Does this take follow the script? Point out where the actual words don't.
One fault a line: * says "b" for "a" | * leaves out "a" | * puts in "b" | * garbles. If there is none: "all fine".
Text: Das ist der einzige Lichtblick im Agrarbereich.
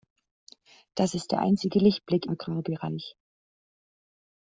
* leaves out "im"